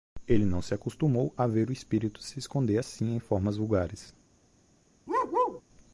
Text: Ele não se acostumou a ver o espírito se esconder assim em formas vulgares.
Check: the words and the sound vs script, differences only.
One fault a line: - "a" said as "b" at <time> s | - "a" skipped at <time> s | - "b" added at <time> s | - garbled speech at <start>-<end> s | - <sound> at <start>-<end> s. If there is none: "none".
- bark at 5.1-5.6 s